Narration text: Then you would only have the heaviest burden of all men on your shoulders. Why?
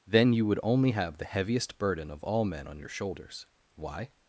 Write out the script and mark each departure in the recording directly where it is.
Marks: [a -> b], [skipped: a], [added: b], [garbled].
Then you would only have the heaviest burden of all men on your shoulders. Why?